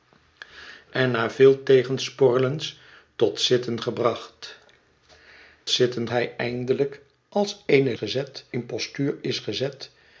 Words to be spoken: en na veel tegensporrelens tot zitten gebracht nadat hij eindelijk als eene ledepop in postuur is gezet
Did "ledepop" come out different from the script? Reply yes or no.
yes